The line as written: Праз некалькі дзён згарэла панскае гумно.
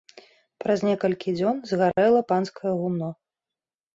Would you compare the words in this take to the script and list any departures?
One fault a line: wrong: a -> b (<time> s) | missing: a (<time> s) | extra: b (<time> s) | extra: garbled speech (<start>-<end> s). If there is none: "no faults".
no faults